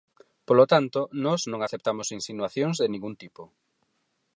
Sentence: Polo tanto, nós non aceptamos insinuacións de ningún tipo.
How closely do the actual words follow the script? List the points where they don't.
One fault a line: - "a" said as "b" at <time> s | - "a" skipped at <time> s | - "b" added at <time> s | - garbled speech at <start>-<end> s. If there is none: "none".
none